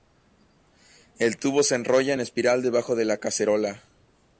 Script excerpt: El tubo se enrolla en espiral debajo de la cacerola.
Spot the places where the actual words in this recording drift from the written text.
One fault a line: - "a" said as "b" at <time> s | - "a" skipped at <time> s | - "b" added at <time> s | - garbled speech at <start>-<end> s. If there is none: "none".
none